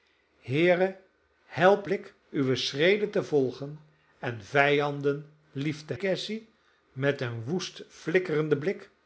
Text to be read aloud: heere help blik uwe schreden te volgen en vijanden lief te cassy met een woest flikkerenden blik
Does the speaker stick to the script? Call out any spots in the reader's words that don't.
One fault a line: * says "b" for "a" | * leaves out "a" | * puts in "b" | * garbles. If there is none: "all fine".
all fine